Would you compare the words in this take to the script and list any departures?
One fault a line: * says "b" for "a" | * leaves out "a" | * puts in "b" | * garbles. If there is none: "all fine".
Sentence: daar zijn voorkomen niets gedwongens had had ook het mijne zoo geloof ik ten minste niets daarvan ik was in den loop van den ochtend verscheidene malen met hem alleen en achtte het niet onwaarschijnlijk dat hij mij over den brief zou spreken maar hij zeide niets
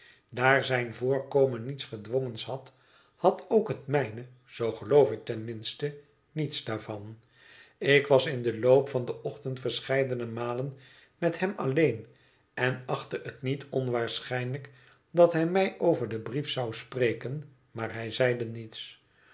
all fine